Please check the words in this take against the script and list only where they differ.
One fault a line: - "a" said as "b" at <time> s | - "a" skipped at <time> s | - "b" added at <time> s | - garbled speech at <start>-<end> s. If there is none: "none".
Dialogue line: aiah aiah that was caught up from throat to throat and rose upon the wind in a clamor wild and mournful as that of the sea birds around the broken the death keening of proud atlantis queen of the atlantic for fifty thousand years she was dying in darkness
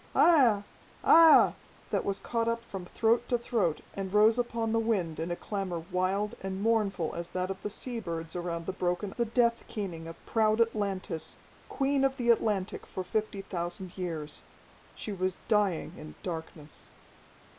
none